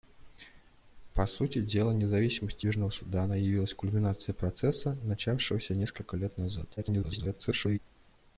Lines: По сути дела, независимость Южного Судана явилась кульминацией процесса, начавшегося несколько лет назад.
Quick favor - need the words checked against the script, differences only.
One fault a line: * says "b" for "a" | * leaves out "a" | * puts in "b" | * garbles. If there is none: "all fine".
* garbles